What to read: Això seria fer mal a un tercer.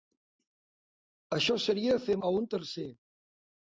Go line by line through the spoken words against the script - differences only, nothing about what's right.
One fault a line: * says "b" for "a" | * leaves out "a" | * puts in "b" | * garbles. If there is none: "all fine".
* leaves out "mal"